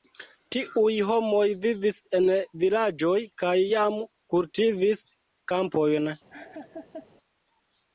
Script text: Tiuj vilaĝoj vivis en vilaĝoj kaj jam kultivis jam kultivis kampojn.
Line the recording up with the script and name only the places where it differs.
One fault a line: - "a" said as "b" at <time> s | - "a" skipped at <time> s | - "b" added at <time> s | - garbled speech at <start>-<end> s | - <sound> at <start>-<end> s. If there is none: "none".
- "vilaĝoj" said as "homoj" at 1.1 s
- "jam kultivis" skipped at 5.0 s
- laugh at 6.3-7.1 s